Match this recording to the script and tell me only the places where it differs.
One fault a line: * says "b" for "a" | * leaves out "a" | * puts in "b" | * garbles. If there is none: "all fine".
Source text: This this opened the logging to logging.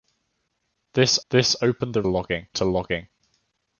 all fine